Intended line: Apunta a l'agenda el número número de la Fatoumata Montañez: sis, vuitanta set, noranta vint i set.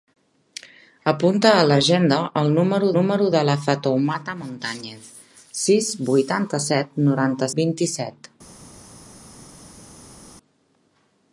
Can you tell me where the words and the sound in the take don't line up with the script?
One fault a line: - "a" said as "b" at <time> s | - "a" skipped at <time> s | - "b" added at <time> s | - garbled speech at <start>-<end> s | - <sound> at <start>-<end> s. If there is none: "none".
none